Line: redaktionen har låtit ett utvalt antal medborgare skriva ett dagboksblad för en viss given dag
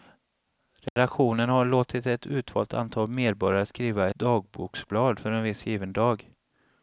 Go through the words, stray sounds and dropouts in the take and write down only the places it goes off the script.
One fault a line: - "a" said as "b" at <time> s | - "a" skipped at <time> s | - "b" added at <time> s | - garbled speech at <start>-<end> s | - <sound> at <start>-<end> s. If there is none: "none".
- dropout at 0.9-1.0 s
- "ett" skipped at 4.1 s